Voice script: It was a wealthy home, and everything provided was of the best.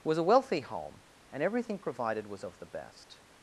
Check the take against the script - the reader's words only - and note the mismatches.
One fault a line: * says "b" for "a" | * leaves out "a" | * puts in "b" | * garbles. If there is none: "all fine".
* leaves out "It"